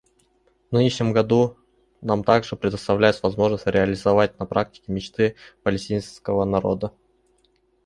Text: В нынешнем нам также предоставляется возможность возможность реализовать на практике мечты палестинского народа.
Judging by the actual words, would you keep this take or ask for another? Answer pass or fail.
fail